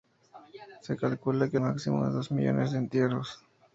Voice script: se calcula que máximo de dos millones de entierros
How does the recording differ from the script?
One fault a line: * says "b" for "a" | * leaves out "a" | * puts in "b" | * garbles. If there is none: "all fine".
all fine